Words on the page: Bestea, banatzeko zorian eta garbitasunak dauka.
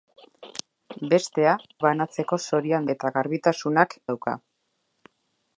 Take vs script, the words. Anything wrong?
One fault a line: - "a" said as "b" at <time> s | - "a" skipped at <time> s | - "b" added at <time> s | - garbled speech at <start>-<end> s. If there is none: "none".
none